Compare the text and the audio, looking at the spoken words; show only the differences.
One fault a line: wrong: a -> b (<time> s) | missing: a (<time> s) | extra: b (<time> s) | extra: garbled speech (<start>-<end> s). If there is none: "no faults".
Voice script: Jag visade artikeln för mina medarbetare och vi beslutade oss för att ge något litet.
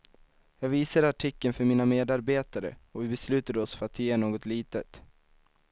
no faults